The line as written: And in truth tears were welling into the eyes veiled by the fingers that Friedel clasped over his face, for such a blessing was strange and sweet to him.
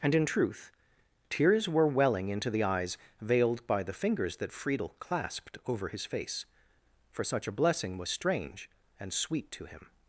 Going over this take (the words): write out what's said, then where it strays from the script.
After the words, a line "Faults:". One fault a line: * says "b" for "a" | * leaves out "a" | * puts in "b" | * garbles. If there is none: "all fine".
And in truth tears were welling into the eyes veiled by the fingers that Friedel clasped over his face, for such a blessing was strange and sweet to him.
Faults:
all fine